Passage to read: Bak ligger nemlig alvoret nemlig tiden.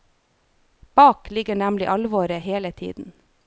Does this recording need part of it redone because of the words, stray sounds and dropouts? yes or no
yes